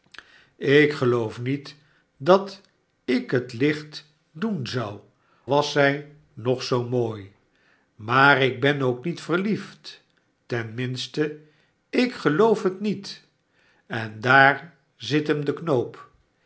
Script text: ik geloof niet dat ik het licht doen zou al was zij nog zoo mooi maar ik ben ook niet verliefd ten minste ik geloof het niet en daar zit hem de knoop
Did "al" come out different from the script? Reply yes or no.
yes